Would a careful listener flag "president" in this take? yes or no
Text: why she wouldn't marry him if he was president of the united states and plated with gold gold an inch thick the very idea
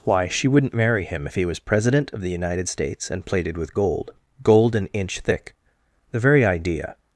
no